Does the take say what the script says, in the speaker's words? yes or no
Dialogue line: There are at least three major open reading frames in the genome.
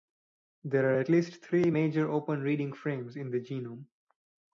yes